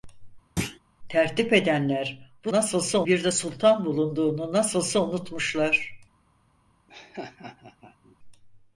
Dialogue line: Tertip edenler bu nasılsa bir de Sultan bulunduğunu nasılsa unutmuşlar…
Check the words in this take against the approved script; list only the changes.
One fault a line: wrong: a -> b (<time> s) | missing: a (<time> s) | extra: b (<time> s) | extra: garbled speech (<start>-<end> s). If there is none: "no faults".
no faults